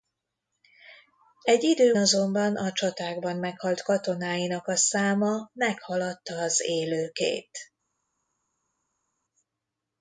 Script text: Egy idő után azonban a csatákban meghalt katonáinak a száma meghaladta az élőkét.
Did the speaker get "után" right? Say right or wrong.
wrong